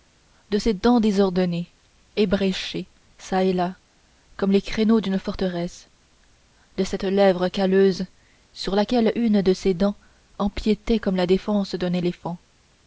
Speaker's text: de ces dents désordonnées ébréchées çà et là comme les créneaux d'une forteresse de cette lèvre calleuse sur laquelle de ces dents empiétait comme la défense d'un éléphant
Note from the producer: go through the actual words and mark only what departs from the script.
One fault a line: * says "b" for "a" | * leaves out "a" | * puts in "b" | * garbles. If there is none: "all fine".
* puts in "une"